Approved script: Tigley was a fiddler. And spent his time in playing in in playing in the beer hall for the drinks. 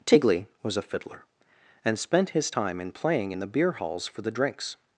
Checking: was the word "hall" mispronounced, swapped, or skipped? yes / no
yes